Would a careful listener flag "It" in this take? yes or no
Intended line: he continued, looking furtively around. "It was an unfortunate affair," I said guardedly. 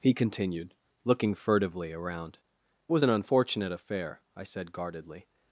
yes